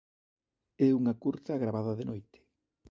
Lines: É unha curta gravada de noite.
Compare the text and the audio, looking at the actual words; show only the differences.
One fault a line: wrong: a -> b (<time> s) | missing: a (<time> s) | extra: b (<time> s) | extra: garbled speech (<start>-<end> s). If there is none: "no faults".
no faults